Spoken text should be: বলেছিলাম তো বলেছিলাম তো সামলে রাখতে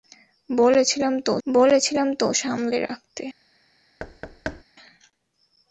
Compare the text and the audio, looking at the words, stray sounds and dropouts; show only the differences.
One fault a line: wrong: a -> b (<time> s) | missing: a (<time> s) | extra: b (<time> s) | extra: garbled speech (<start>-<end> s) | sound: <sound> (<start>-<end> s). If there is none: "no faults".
sound: thud (4.0-4.6 s)